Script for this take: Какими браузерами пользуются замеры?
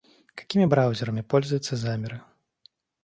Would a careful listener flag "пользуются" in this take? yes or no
no